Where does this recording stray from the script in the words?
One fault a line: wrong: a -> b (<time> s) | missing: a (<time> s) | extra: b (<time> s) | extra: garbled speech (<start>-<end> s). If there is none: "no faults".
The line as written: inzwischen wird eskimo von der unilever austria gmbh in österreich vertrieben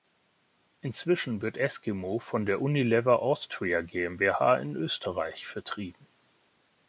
no faults